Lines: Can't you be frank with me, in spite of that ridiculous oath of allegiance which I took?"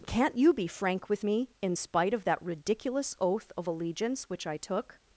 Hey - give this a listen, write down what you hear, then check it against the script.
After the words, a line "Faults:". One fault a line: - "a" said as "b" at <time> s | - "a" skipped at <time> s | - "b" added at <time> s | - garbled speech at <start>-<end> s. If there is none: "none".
Can't you be frank with me, in spite of that ridiculous oath of allegiance which I took?"
Faults:
none